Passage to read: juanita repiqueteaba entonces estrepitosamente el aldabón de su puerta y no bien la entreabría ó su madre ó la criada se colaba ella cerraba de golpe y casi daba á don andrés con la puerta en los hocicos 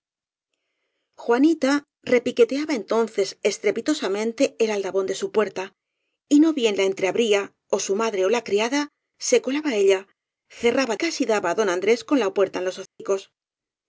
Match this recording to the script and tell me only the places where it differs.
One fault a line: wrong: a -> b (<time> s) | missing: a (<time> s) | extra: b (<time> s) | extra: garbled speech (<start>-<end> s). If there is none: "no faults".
missing: de golpe y (11.0 s)